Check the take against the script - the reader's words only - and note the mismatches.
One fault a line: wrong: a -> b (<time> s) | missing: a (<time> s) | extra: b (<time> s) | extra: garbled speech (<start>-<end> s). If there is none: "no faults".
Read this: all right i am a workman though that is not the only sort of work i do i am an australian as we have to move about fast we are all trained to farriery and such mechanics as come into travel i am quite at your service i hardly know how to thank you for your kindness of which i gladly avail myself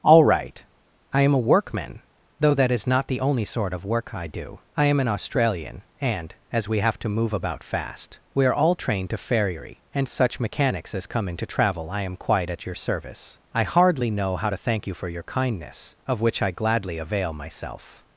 extra: and (6.0 s)